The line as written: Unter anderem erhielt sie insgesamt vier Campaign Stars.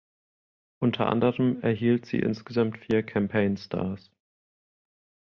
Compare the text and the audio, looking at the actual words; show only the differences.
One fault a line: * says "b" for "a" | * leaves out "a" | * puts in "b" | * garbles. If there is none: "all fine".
all fine